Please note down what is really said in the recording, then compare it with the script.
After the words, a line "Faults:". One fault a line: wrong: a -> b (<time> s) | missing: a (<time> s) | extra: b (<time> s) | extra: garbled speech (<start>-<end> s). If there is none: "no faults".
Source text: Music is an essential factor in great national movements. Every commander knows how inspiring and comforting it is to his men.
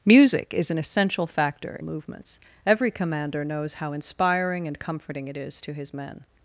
Music is an essential factor movements. Every commander knows how inspiring and comforting it is to his men.
Faults:
missing: in great national (1.8 s)